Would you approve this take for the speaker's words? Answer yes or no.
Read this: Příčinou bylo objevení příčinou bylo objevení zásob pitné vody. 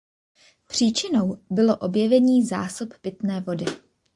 no